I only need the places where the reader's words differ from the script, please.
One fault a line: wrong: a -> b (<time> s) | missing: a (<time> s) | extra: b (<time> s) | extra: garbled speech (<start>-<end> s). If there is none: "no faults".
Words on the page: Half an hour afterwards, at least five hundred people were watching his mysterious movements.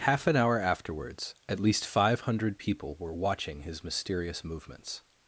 no faults